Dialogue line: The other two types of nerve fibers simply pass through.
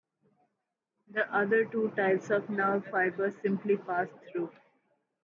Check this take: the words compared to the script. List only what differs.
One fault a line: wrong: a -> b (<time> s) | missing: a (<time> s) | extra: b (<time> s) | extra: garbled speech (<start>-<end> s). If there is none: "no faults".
no faults